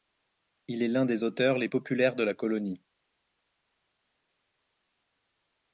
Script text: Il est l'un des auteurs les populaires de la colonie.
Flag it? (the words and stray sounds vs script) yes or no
no